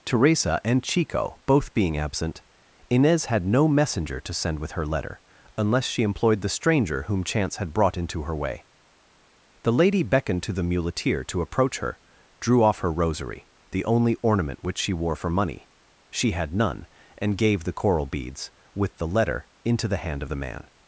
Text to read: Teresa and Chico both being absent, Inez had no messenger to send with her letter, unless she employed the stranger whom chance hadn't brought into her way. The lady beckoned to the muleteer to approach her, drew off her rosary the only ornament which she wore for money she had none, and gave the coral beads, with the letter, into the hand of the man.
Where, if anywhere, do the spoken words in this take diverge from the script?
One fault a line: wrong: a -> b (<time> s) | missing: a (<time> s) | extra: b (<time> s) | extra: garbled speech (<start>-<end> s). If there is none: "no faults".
wrong: hadn't -> had (7.6 s)